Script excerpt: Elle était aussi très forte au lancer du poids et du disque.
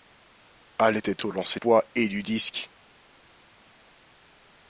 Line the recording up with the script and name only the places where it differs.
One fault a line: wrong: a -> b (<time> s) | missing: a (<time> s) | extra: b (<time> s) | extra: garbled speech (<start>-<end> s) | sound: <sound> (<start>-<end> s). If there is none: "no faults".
missing: aussi très forte (1.2 s)
missing: du (1.6 s)